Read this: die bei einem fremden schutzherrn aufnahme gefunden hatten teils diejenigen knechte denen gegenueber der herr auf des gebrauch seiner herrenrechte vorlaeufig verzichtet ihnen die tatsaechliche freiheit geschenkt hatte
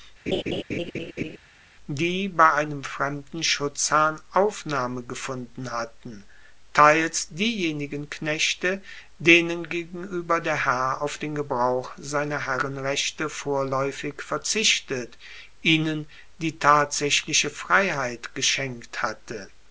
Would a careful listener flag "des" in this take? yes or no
yes